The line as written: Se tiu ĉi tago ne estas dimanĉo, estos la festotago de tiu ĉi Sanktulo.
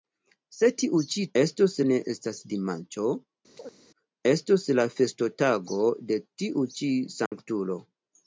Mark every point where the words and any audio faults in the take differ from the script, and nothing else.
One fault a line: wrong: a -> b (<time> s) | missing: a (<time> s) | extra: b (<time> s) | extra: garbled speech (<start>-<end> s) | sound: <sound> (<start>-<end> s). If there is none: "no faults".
wrong: tago -> estos (1.4 s)
sound: chirp (3.5-3.8 s)
sound: dropout (7.3-7.3 s)